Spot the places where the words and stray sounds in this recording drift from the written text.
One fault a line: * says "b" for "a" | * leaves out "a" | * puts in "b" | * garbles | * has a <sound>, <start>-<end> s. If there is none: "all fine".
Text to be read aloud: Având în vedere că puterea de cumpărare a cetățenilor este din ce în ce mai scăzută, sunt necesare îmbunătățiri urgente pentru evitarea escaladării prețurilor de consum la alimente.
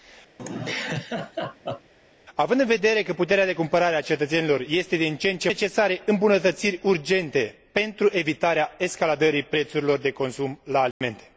* has a laugh, 0.4-1.9 s
* leaves out "mai scăzută sunt"
* has a dropout, 10.9-11.0 s